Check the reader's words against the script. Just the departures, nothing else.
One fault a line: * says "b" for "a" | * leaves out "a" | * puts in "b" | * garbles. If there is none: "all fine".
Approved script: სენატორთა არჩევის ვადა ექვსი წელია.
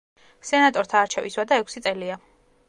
all fine